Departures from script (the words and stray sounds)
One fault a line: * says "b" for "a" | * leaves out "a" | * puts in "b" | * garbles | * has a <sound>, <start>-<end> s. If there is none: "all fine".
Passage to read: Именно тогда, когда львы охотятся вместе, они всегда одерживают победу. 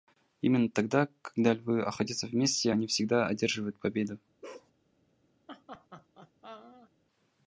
* has a bark, 4.4-4.7 s
* has a laugh, 5.5-6.9 s